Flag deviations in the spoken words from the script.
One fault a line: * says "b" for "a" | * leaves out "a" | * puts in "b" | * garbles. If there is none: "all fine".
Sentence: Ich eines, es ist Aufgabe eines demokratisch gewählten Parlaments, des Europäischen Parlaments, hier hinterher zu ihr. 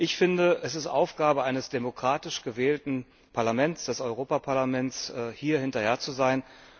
* says "finde" for "eines"
* says "sein" for "ihr"